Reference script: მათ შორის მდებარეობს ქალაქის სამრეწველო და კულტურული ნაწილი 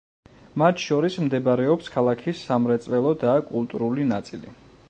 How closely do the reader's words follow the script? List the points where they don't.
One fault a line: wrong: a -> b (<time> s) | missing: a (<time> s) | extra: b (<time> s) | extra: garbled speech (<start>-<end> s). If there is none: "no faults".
no faults